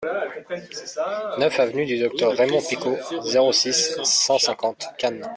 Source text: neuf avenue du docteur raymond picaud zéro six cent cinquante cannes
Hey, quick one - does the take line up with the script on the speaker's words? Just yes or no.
yes